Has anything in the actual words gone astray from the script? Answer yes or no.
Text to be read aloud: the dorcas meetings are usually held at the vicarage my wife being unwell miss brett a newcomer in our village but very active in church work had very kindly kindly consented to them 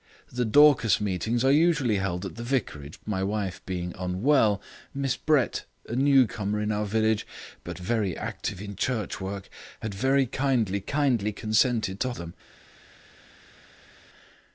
no